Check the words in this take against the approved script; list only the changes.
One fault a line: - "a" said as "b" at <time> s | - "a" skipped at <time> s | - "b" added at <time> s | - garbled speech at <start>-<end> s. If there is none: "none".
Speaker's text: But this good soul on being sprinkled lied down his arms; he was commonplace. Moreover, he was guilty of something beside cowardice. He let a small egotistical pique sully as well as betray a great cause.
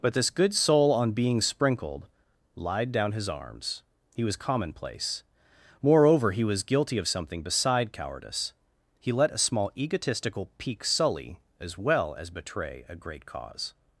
none